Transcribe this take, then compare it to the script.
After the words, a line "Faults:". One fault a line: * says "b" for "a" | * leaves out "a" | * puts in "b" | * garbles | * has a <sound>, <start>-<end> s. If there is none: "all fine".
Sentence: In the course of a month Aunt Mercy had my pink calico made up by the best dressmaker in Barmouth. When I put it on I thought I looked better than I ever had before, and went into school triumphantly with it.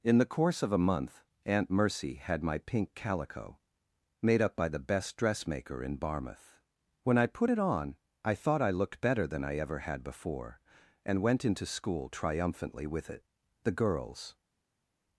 In the course of a month Aunt Mercy had my pink calico made up by the best dressmaker in Barmouth. When I put it on I thought I looked better than I ever had before, and went into school triumphantly with it. The girls
Faults:
* puts in "The girls"